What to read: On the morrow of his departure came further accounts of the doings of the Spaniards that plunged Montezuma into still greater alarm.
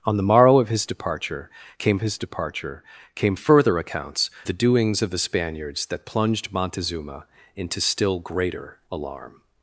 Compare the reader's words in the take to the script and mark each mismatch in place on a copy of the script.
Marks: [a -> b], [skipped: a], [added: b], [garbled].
On the morrow of his departure came [added: his departure came] further accounts [skipped: of] the doings of the Spaniards that plunged Montezuma into still greater alarm.